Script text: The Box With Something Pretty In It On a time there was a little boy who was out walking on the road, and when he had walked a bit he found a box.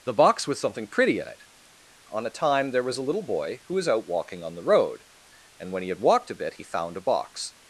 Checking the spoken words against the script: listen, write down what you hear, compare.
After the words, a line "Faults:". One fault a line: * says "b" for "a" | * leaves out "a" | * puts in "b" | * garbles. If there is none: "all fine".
The Box With Something Pretty In It On a time there was a little boy who was out walking on the road, and when he had walked a bit he found a box.
Faults:
all fine